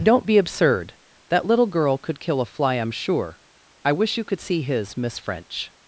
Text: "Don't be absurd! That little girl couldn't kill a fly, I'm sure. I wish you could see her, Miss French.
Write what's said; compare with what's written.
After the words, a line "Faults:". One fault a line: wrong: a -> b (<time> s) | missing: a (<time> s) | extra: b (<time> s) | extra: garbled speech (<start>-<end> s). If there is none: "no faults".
"Don't be absurd! That little girl could kill a fly, I'm sure. I wish you could see his, Miss French.
Faults:
wrong: couldn't -> could (2.0 s)
wrong: her -> his (4.6 s)